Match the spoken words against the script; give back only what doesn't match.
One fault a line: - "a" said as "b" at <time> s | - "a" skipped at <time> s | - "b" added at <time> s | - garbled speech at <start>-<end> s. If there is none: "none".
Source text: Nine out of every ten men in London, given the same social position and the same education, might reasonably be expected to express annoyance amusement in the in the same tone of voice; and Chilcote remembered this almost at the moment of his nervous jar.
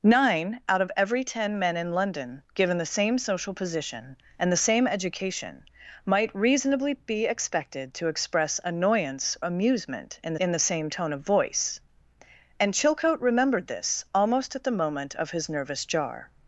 none